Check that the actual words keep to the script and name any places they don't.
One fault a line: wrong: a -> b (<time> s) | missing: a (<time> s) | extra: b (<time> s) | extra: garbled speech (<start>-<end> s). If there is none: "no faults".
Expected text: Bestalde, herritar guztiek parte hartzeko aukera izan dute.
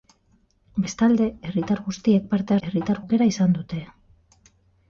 wrong: hartzeko -> herritar (2.7 s)